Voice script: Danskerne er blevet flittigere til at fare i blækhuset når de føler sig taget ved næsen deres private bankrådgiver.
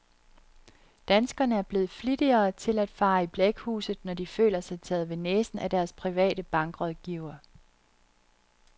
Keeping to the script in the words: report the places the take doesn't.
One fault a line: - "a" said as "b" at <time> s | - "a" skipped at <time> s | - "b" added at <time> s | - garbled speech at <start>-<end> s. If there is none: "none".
- "af" added at 5.6 s